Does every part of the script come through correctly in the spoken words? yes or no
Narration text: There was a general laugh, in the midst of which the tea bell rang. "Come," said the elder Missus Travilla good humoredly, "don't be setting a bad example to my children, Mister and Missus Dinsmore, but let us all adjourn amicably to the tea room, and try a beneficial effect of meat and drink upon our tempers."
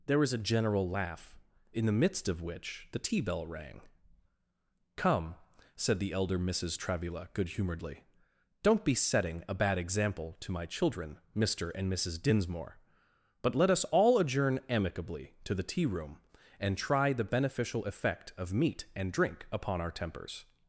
no